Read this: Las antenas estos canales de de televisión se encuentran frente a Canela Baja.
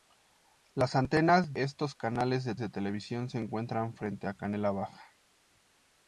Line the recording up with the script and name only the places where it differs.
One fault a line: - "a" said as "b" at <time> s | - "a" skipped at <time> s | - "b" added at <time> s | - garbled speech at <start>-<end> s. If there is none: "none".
none